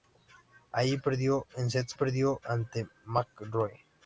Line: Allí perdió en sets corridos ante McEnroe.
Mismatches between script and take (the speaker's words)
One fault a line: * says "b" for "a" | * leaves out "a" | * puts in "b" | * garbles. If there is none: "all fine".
* says "perdió" for "corridos"